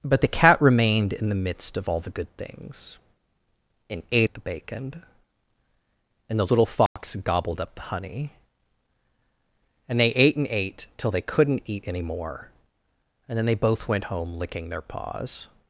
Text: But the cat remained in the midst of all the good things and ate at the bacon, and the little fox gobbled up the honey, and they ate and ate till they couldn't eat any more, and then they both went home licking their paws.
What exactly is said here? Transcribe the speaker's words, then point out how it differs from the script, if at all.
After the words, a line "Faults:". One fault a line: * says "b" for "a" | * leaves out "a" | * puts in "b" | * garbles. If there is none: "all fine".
But the cat remained in the midst of all the good things and ate at the bacon, and the little fox gobbled up the honey, and they ate and ate till they couldn't eat any more, and then they both went home licking their paws.
Faults:
all fine